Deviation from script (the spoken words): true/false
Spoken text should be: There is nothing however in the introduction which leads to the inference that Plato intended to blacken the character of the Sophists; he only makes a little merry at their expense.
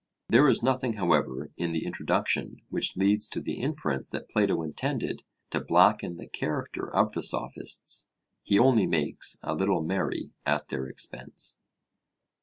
false